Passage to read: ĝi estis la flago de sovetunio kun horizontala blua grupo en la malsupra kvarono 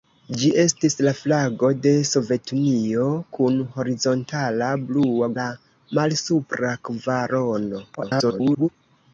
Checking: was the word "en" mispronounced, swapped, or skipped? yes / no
yes